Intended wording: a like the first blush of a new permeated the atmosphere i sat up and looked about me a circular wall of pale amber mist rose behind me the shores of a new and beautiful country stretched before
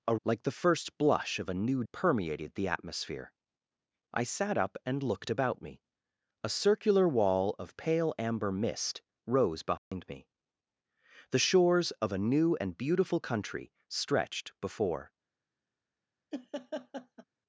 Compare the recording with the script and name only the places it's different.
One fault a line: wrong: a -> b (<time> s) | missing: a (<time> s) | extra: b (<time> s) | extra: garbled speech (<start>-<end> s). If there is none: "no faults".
no faults